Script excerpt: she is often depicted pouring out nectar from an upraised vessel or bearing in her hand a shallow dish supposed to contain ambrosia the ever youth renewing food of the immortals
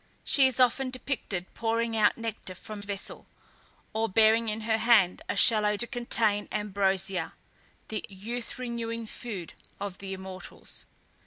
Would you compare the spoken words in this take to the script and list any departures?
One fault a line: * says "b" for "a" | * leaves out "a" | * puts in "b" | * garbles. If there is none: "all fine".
* leaves out "an upraised"
* leaves out "dish supposed"
* leaves out "ever"